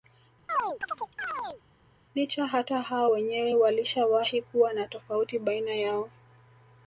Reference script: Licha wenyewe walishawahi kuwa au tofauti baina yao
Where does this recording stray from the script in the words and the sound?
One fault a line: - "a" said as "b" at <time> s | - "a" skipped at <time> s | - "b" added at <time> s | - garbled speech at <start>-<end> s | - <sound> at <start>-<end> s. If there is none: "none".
- chirp at 0.5-1.6 s
- "hata hao" added at 2.5 s
- "au" said as "na" at 4.7 s